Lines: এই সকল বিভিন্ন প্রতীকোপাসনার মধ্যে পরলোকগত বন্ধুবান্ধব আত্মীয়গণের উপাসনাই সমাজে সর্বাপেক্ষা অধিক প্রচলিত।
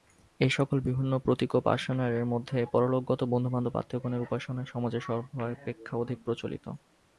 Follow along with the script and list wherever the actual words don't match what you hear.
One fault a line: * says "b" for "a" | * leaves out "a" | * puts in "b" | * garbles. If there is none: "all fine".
all fine